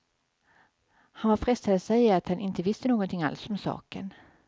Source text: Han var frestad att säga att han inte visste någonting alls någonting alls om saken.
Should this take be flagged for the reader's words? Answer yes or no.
yes